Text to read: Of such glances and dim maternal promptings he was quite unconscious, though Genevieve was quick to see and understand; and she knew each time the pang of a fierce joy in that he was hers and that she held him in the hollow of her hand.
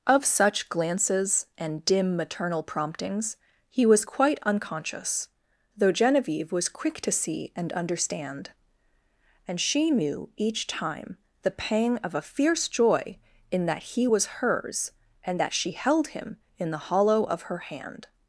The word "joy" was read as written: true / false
true